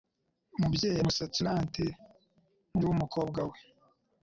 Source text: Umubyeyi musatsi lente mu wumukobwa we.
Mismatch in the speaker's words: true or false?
false